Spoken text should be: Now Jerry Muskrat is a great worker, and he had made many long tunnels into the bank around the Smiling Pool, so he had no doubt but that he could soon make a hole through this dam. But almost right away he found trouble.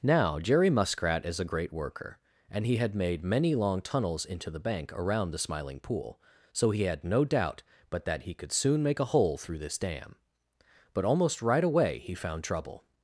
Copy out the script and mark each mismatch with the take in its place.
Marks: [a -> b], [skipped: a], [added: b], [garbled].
Now Jerry Muskrat is a great worker, and he had made many long tunnels into the bank around the Smiling Pool, so he had no doubt but that he could soon make a hole through this dam. But almost right away he found trouble.